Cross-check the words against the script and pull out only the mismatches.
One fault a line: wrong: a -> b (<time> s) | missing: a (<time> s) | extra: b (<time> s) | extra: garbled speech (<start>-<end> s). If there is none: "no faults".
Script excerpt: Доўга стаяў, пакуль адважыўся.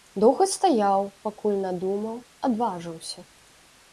extra: надумаў (1.6 s)